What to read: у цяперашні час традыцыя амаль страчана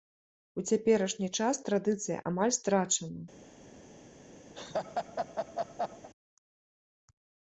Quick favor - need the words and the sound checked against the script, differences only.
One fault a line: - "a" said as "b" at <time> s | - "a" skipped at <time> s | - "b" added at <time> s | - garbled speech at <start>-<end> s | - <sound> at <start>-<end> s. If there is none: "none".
- laugh at 4.5-6.1 s